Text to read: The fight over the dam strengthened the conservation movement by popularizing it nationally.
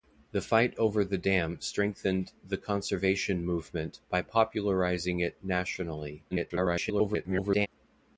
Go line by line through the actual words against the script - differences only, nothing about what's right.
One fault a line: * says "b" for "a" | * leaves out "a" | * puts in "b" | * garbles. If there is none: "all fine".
* garbles